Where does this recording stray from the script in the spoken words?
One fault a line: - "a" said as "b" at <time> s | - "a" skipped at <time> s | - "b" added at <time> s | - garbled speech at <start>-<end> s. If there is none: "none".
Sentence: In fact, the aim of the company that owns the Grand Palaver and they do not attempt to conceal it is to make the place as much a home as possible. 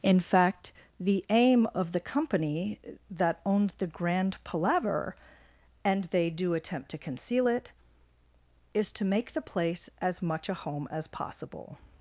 - "not" skipped at 6.5 s